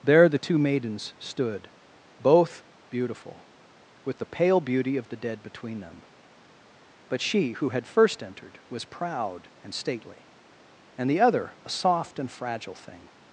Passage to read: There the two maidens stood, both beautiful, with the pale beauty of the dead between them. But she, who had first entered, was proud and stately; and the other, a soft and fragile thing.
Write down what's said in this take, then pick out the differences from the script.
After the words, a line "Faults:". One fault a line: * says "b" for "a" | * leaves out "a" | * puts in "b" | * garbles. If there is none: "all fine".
There the two maidens stood, both beautiful, with the pale beauty of the dead between them. But she, who had first entered, was proud and stately; and the other, a soft and fragile thing.
Faults:
all fine